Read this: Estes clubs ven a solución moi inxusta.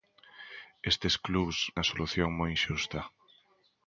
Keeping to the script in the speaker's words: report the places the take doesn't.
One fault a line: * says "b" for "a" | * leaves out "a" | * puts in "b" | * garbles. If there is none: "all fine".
* leaves out "ven"